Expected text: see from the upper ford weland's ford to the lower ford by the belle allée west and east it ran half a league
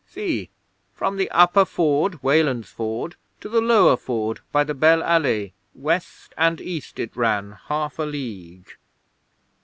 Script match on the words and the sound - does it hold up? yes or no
yes